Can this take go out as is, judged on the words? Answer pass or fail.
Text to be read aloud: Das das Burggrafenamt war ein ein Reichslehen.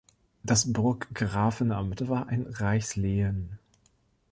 fail